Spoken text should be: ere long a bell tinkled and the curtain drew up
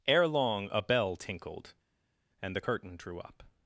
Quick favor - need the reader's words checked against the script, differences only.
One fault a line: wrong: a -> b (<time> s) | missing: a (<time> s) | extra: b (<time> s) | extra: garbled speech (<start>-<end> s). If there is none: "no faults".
no faults